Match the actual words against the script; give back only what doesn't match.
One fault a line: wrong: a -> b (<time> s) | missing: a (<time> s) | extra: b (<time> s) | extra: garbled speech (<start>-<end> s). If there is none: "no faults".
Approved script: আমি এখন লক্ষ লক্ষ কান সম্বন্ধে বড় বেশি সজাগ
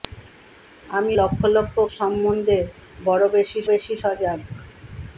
missing: এখন (1.1 s)
missing: কান (1.7 s)
extra: বেশি (3.7 s)